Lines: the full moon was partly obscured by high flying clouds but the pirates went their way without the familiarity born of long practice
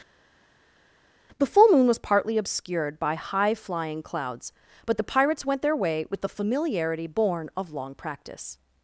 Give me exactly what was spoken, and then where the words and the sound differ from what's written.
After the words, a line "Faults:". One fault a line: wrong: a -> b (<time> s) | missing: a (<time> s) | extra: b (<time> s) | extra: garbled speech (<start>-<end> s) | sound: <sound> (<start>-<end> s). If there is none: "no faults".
the full moon was partly obscured by high flying clouds but the pirates went their way with the familiarity born of long practice
Faults:
wrong: without -> with (6.1 s)